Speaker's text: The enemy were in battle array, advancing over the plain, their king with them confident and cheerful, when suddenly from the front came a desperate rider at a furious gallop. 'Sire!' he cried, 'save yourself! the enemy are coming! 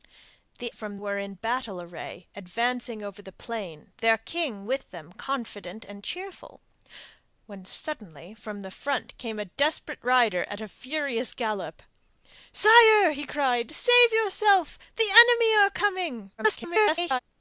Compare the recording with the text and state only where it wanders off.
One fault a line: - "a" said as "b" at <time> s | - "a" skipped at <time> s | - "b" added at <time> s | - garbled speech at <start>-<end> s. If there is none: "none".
- "enemy" said as "from" at 0.7 s
- garbled speech at 16.4-17.2 s